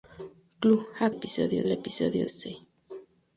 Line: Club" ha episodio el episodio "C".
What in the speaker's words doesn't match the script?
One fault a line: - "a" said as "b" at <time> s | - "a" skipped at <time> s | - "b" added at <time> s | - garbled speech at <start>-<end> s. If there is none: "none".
none